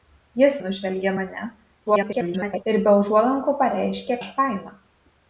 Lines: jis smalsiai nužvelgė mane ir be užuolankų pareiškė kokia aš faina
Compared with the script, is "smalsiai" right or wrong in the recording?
wrong